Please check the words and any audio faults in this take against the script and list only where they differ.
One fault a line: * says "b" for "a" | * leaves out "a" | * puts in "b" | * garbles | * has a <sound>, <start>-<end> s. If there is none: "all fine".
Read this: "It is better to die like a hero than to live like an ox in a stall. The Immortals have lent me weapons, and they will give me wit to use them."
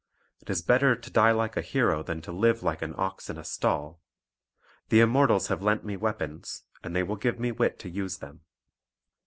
all fine